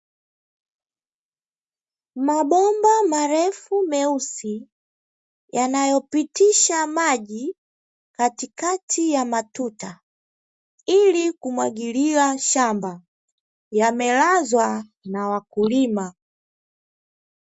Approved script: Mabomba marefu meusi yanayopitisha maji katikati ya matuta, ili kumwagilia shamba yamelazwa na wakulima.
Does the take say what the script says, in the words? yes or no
yes